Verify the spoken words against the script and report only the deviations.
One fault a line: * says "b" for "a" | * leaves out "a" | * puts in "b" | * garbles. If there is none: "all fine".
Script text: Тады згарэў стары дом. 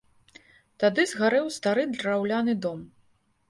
* puts in "драўляны"